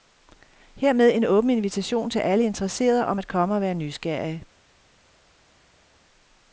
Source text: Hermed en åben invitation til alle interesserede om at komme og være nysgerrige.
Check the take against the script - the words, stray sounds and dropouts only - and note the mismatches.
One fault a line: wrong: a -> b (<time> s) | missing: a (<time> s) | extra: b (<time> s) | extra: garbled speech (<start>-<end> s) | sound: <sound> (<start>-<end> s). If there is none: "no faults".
no faults